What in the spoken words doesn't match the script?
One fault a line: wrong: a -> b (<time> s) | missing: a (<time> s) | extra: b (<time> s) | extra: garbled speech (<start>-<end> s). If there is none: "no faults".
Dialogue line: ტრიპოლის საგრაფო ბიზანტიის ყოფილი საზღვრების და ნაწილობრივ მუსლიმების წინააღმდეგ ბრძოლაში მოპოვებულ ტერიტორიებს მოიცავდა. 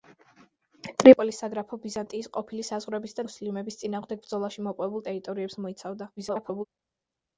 missing: ნაწილობრივ (3.2 s)
extra: garbled speech (6.2-6.7 s)